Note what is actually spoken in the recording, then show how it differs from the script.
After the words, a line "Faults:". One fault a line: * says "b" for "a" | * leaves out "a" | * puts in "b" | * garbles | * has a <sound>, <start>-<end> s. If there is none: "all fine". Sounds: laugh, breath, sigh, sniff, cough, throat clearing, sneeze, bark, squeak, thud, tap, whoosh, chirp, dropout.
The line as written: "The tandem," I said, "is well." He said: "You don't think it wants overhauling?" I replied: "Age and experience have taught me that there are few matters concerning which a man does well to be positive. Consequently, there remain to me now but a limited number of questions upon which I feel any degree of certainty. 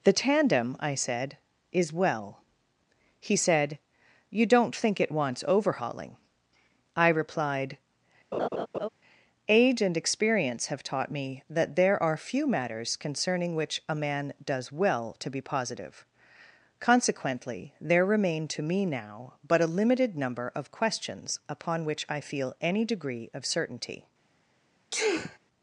"The tandem," I said, "is well." He said: "You don't think it wants overhauling?" I replied: "Age and experience have taught me that there are few matters concerning which a man does well to be positive. Consequently, there remain to me now but a limited number of questions upon which I feel any degree of certainty.
Faults:
* has a laugh, 8.3-8.9 s
* has a sneeze, 24.9-25.4 s